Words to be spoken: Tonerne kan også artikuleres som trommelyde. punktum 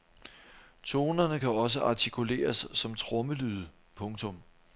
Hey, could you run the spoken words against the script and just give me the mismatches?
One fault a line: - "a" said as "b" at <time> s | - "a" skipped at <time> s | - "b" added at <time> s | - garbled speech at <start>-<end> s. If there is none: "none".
none